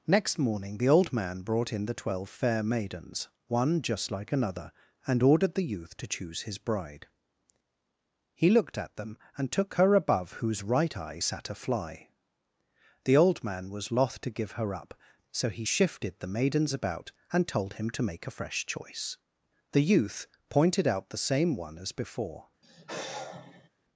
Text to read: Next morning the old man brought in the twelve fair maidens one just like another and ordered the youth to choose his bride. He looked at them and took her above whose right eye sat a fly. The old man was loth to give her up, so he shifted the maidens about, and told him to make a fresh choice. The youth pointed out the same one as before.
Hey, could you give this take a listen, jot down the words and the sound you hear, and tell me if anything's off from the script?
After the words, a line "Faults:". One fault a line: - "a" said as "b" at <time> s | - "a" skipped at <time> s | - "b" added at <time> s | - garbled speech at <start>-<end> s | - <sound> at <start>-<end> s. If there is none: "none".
Next morning the old man brought in the twelve fair maidens one just like another and ordered the youth to choose his bride. He looked at them and took her above whose right eye sat a fly. The old man was loth to give her up, so he shifted the maidens about, and told him to make a fresh choice. The youth pointed out the same one as before.
Faults:
- sigh at 22.6-23.7 s